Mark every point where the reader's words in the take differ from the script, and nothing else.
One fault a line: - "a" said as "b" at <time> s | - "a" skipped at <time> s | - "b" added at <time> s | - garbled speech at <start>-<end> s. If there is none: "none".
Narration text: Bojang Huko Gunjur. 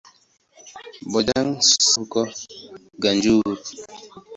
none